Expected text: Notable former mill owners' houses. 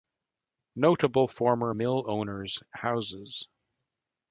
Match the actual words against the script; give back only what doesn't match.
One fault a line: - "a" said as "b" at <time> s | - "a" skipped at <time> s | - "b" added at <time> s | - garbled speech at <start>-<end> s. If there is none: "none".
none